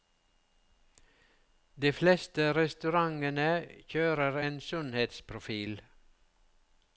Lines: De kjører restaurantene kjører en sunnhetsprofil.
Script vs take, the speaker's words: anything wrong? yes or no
yes